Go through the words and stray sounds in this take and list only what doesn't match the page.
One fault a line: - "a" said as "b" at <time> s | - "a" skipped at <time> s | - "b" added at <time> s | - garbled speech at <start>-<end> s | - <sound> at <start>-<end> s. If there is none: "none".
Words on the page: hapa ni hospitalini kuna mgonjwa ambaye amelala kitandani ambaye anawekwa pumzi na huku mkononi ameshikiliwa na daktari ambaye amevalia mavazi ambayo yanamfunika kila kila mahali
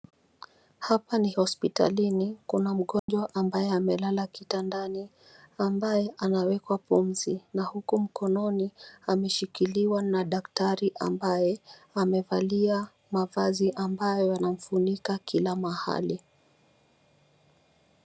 - dropout at 3.0-3.1 s
- "kila" skipped at 15.6 s